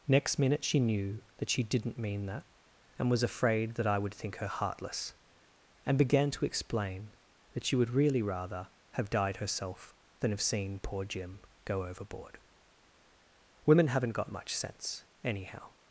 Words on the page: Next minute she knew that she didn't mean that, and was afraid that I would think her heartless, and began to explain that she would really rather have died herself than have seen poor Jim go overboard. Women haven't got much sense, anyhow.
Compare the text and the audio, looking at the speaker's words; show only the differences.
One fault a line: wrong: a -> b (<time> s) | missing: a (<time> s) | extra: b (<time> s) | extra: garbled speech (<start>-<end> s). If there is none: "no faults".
no faults